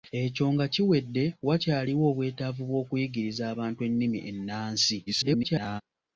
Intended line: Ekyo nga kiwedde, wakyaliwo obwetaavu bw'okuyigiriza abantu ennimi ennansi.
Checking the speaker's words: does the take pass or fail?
fail